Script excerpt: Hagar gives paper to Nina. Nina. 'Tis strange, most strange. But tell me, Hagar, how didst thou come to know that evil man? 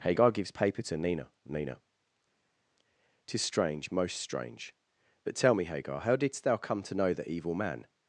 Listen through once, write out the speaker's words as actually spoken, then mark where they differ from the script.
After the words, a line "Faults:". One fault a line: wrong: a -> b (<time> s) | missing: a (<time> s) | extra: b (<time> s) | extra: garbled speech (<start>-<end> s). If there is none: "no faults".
Hagar gives paper to Nina. Nina. 'Tis strange, most strange. But tell me, Hagar, how didst thou come to know the evil man?
Faults:
wrong: that -> the (7.1 s)